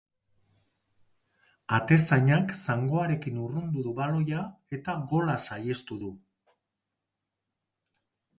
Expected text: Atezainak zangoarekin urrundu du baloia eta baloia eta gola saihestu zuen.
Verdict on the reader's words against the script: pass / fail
fail